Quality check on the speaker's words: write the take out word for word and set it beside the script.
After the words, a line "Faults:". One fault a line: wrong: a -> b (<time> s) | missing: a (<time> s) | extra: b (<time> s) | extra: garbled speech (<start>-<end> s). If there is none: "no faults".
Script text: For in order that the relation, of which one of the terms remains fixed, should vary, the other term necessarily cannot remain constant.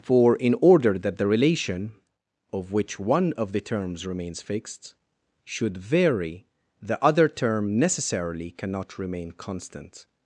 For in order that the relation, of which one of the terms remains fixed, should vary, the other term necessarily cannot remain constant.
Faults:
no faults